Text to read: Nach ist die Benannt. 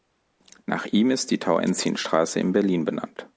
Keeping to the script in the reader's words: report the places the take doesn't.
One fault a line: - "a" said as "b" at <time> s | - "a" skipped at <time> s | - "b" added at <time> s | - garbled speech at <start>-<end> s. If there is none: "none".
- "ihm" added at 0.8 s
- "Tauentzienstraße in Berlin" added at 1.4 s